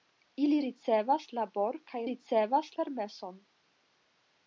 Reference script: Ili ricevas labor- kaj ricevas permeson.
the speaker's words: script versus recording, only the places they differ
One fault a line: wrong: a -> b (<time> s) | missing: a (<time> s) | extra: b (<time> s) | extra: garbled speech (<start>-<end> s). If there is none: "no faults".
no faults